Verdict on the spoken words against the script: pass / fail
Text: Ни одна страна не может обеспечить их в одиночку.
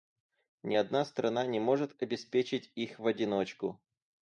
pass